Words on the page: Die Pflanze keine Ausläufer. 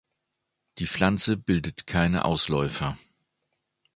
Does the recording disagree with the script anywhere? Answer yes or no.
yes